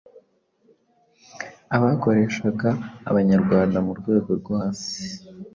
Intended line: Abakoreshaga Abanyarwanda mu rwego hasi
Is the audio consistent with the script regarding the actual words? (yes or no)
no